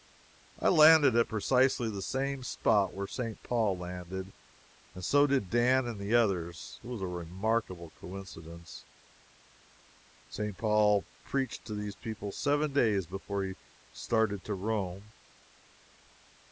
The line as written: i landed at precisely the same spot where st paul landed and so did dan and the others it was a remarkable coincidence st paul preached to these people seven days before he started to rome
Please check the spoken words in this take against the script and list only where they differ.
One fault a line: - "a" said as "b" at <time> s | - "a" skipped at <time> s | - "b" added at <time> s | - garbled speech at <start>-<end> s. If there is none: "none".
none